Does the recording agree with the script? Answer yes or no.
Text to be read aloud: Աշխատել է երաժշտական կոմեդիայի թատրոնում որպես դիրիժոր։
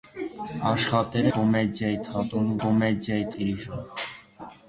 no